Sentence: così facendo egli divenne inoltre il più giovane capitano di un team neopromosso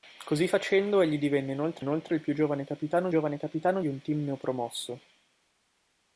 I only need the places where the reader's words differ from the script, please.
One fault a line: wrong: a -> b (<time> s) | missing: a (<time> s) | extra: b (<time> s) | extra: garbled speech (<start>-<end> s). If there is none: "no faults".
extra: inoltre (1.8 s)
extra: giovane capitano (3.1 s)